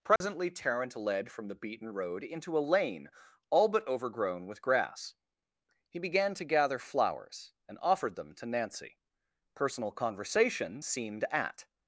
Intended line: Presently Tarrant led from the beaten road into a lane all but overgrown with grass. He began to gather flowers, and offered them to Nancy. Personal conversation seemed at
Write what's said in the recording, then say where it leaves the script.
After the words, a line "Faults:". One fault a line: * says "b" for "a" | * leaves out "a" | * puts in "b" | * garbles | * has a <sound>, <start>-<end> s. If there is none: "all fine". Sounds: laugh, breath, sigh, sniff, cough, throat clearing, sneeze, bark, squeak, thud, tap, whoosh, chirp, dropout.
Presently Tarrant led from the beaten road into a lane all but overgrown with grass. He began to gather flowers, and offered them to Nancy. Personal conversation seemed at
Faults:
* has a dropout, 0.2-0.2 s